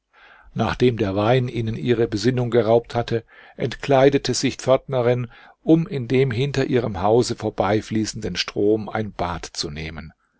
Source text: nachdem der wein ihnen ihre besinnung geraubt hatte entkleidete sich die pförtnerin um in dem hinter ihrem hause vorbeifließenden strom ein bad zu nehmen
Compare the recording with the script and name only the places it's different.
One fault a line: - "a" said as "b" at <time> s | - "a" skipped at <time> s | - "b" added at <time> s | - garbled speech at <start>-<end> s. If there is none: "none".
- "die" skipped at 4.6 s